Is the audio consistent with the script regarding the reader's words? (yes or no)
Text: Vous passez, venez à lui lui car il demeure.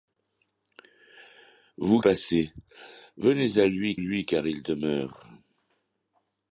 yes